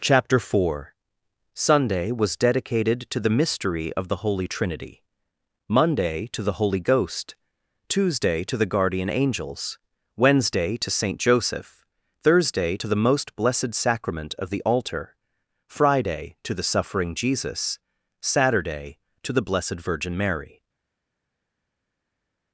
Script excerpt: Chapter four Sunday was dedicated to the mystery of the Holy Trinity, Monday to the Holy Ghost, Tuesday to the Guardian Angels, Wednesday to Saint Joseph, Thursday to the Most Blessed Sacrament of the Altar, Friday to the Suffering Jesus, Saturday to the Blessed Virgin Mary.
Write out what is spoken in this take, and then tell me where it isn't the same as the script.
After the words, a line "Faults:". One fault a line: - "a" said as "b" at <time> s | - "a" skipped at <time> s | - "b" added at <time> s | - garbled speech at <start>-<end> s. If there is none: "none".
Chapter four Sunday was dedicated to the mystery of the Holy Trinity, Monday to the Holy Ghost, Tuesday to the Guardian Angels, Wednesday to Saint Joseph, Thursday to the Most Blessed Sacrament of the Altar, Friday to the Suffering Jesus, Saturday to the Blessed Virgin Mary.
Faults:
none